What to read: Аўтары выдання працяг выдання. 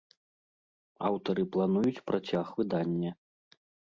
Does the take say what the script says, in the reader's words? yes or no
no